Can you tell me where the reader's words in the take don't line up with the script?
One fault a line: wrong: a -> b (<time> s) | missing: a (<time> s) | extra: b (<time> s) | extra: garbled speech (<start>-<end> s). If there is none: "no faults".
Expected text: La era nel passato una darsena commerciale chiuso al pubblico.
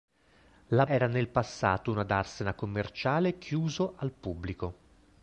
no faults